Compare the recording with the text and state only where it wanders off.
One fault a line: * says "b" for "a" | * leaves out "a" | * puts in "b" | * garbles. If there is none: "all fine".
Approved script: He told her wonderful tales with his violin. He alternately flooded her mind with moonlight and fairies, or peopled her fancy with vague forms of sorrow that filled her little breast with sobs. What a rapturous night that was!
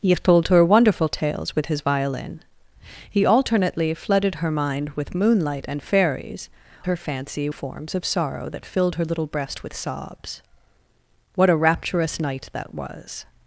* leaves out "or peopled"
* leaves out "with vague"